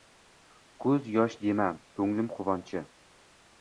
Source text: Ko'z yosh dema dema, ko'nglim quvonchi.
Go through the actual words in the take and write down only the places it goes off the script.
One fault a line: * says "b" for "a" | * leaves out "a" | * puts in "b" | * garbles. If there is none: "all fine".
* leaves out "dema"